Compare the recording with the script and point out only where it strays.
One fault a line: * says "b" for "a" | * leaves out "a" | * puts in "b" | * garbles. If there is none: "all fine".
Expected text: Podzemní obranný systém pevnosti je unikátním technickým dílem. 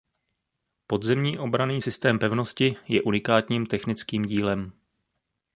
all fine